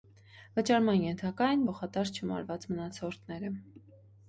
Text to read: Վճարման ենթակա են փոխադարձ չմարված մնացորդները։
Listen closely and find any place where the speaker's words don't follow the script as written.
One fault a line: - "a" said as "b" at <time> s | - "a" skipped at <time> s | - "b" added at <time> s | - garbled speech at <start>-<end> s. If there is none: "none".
none